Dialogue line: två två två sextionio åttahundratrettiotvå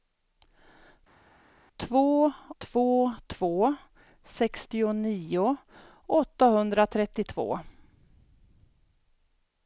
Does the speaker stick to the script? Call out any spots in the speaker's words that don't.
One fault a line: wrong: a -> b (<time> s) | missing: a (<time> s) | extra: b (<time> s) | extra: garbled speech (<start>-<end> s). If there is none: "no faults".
no faults